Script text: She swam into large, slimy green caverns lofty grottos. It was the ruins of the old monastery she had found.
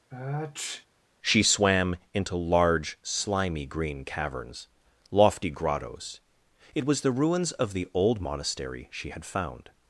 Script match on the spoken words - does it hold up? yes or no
yes